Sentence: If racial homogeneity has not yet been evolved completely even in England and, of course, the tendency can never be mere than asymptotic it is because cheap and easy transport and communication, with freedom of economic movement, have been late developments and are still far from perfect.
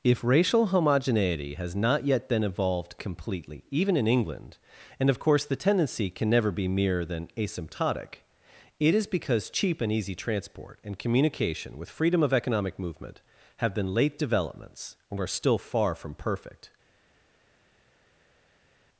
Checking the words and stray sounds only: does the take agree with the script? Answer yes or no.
yes